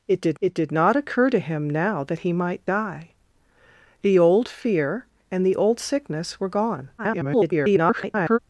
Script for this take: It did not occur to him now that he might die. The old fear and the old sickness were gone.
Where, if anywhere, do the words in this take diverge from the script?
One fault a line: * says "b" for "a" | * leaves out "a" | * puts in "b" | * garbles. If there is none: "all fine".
* puts in "it did"
* garbles